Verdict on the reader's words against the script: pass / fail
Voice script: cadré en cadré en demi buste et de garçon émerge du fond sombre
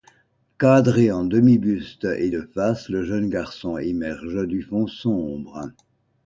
fail